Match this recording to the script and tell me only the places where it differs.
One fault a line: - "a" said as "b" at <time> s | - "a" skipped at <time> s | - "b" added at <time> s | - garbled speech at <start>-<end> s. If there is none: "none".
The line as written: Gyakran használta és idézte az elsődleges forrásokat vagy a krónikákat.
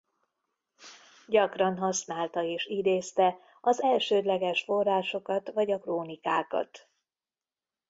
none